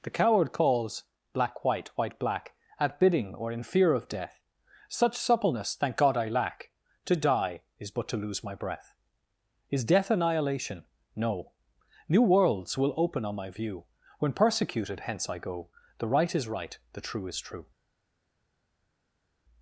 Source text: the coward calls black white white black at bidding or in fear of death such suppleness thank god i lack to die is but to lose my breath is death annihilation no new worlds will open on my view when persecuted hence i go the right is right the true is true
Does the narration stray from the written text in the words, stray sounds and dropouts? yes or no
no